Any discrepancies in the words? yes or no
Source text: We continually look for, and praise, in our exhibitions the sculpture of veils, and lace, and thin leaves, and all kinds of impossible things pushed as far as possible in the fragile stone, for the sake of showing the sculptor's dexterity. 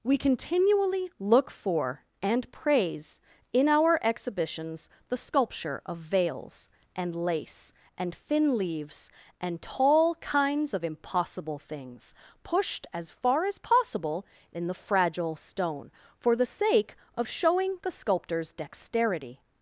yes